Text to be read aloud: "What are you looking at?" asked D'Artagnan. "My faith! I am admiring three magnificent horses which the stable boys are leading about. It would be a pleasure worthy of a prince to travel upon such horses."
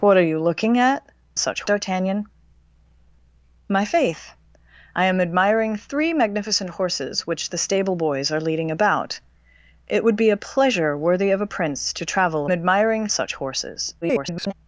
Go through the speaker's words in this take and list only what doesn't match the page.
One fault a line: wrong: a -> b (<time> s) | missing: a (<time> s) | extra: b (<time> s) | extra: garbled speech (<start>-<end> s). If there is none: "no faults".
wrong: asked -> such (1.4 s)
wrong: upon -> admiring (12.5 s)
extra: garbled speech (14.0-14.5 s)